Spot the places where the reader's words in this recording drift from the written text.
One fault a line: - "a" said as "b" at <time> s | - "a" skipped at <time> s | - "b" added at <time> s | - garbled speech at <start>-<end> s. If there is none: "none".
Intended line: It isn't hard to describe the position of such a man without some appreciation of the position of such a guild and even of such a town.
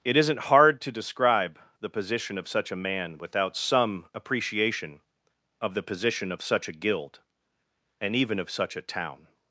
none